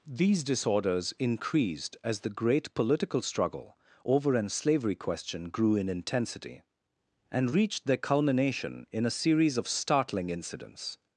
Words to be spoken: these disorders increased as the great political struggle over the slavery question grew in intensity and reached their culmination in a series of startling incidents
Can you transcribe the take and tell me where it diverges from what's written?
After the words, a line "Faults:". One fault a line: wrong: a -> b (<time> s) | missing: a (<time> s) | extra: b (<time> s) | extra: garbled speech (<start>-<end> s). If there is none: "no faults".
these disorders increased as the great political struggle over an slavery question grew in intensity and reached their culmination in a series of startling incidents
Faults:
wrong: the -> an (4.3 s)